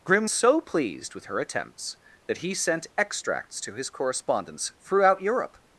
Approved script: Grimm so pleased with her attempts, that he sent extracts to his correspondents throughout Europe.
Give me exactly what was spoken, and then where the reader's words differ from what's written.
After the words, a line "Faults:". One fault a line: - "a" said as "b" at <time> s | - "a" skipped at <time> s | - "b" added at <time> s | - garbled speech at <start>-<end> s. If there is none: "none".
Grimm so pleased with her attempts, that he sent extracts to his correspondents throughout Europe.
Faults:
none